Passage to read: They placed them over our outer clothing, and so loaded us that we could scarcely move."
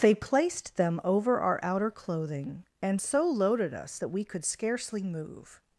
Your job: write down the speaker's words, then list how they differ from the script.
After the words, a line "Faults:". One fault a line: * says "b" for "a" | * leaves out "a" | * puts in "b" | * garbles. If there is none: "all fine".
They placed them over our outer clothing, and so loaded us that we could scarcely move."
Faults:
all fine